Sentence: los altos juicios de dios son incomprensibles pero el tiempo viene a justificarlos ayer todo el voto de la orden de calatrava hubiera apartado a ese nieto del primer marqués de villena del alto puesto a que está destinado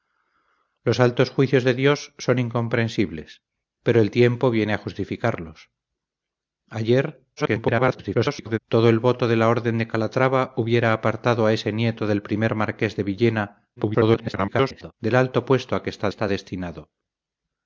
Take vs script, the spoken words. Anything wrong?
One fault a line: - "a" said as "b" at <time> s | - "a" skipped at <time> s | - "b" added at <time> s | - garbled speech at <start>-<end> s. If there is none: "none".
- garbled speech at 7.4-8.6 s
- garbled speech at 13.8-14.9 s
- "está" added at 16.1 s